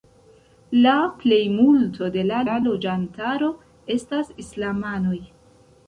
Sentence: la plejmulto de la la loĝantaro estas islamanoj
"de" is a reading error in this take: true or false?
false